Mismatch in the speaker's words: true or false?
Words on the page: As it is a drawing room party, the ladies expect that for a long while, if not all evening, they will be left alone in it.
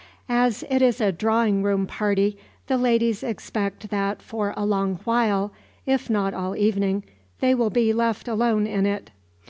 false